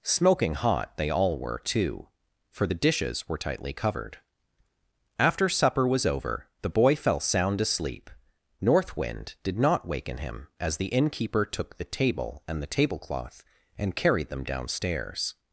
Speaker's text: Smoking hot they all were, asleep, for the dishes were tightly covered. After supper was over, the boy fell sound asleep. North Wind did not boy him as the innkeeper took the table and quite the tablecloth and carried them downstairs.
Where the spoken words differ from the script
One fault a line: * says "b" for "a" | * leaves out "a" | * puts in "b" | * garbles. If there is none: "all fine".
* says "too" for "asleep"
* says "waken" for "boy"
* leaves out "quite"